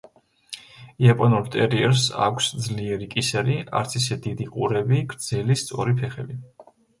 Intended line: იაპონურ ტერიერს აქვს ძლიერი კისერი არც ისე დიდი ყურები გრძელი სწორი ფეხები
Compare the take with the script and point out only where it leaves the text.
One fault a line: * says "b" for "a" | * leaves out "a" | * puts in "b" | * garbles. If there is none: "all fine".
all fine